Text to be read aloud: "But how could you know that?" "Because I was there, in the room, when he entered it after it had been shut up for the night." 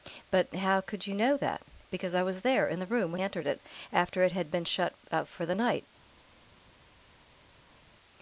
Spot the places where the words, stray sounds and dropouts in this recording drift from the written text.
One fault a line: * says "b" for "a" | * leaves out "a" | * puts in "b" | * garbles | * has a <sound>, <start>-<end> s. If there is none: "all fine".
* leaves out "he"